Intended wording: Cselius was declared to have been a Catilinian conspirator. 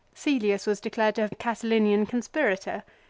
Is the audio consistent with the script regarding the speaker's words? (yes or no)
no